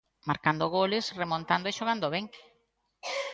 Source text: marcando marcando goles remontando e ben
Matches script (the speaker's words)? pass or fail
fail